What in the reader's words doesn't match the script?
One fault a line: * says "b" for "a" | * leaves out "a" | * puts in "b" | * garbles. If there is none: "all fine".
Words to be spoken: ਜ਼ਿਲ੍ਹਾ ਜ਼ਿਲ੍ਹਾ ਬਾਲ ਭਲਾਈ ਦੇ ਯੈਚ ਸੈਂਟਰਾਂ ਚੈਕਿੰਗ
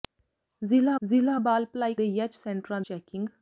all fine